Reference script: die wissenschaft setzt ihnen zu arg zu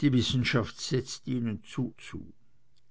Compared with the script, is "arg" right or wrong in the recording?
wrong